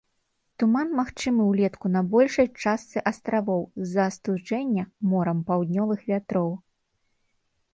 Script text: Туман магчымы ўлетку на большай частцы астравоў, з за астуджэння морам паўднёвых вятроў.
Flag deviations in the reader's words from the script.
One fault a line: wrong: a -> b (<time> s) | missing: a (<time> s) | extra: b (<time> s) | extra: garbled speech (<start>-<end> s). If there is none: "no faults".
no faults